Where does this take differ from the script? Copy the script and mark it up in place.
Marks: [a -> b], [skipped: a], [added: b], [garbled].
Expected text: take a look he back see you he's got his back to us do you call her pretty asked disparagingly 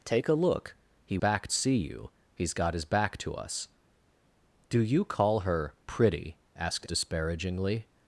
take a look he back see you he's got his back to us do you call her pretty asked disparagingly